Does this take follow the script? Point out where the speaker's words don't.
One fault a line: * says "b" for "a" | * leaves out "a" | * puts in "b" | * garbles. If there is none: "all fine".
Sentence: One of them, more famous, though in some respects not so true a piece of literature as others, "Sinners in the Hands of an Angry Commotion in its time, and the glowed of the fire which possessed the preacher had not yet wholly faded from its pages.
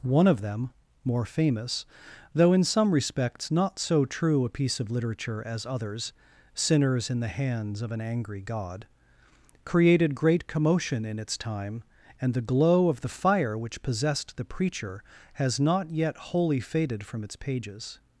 * puts in "God created great"
* says "glow" for "glowed"
* says "has" for "had"